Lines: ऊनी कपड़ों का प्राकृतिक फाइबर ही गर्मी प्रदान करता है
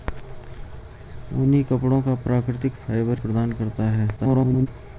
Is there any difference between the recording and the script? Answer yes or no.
yes